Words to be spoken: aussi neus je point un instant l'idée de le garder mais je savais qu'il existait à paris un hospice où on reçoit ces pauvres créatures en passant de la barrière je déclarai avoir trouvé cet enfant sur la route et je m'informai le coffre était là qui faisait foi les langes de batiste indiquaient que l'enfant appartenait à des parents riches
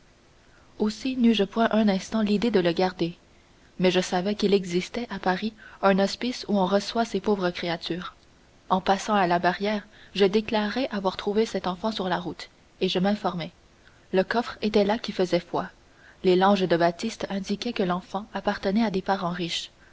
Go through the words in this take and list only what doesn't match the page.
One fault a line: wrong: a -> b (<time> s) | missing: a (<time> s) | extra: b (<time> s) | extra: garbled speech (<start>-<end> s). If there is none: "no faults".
wrong: de -> à (9.1 s)